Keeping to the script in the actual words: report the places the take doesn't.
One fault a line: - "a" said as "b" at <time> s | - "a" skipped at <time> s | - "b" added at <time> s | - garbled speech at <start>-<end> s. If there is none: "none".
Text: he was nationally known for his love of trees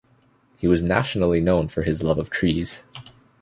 none